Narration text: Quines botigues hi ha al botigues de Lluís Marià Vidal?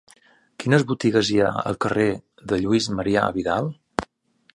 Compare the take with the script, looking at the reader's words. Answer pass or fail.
fail